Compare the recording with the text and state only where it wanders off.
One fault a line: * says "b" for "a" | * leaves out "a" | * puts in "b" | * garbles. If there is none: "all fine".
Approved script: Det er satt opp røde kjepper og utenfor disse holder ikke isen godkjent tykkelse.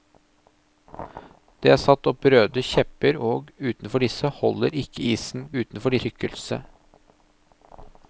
* says "utenfor" for "godkjent"